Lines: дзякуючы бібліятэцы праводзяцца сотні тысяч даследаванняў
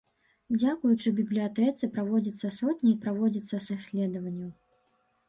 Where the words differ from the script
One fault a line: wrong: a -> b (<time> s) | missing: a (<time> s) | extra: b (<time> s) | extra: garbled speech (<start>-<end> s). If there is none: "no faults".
wrong: тысяч -> праводзяцца (3.1 s)